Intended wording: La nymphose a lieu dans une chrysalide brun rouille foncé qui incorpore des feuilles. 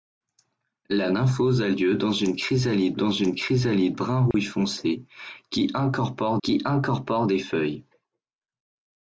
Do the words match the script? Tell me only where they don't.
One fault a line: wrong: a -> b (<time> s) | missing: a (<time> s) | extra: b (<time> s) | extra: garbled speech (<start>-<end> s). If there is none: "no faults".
extra: dans une chrysalide (2.9 s)
extra: qui incorpore (6.4 s)